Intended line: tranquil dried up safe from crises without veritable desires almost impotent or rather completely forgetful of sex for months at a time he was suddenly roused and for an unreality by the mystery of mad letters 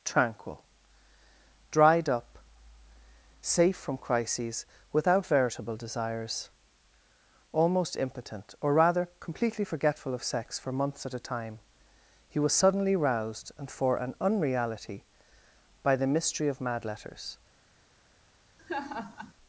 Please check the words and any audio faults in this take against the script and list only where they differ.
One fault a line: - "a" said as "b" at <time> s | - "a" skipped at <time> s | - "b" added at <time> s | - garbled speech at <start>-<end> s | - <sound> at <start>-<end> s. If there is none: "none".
- laugh at 18.6-19.3 s